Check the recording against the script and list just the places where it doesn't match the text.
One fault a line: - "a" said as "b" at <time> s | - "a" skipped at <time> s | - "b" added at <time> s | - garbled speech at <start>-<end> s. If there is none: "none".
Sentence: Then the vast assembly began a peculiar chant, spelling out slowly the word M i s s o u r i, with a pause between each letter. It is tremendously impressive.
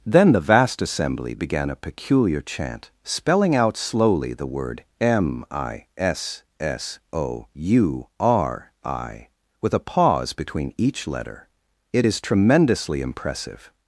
none